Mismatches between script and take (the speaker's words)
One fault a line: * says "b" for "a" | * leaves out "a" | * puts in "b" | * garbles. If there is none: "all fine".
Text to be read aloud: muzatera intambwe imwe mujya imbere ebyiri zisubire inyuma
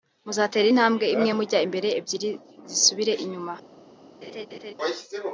all fine